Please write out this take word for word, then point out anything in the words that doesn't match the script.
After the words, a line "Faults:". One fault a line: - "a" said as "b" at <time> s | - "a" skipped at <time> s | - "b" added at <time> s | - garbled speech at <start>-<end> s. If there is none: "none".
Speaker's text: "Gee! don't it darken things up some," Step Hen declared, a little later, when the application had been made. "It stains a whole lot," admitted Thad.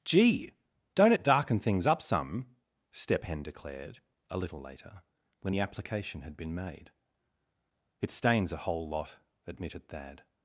"Gee! don't it darken things up some," Step Hen declared, a little later, when the application had been made. "It stains a whole lot," admitted Thad.
Faults:
none